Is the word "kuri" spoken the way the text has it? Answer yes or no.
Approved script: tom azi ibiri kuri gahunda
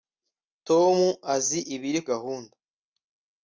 no